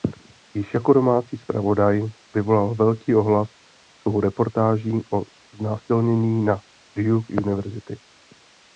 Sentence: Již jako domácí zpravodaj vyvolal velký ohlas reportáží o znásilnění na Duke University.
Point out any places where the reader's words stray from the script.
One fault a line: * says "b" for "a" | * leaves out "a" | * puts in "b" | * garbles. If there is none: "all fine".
* puts in "svou"